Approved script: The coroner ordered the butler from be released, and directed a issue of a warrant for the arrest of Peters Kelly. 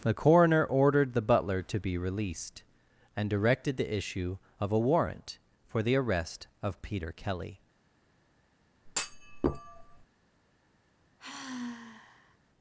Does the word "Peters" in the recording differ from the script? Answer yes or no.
yes